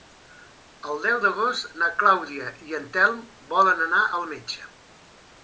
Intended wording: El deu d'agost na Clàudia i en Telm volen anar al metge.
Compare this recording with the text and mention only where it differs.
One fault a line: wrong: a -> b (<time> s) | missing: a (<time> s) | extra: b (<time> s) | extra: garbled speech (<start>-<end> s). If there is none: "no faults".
no faults